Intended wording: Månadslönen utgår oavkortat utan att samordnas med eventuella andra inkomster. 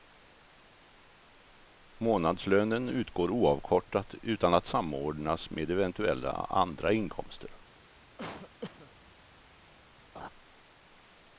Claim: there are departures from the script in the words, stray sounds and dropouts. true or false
true